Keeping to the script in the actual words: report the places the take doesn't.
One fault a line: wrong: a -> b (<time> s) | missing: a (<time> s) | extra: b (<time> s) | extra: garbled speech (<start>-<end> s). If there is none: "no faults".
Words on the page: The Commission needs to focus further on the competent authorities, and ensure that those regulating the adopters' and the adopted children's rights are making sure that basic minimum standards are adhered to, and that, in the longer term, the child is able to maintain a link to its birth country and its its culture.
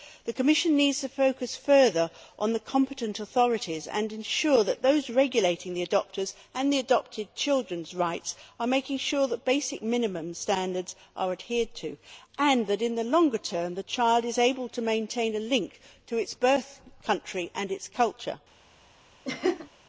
missing: its (17.9 s)